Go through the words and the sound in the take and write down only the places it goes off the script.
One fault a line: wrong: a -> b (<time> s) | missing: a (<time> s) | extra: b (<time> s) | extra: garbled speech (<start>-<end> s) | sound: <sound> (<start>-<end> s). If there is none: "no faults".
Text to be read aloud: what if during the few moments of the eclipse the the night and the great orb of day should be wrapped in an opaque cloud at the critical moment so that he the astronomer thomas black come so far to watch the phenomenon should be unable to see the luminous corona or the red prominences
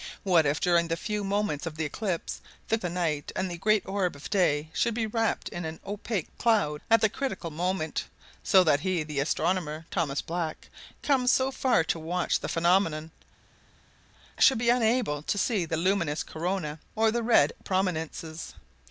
no faults